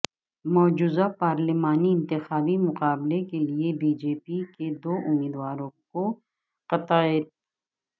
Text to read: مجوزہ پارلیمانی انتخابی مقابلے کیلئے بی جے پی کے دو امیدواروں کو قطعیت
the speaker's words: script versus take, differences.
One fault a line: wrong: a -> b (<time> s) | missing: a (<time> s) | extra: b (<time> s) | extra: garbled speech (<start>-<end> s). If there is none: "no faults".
no faults